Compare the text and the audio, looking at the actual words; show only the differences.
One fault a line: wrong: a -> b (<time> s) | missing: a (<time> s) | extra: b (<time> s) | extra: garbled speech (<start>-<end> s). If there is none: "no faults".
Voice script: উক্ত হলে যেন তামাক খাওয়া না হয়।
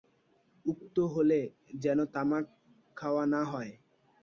no faults